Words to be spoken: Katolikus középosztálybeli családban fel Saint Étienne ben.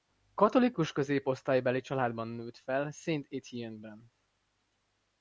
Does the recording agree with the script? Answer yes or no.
no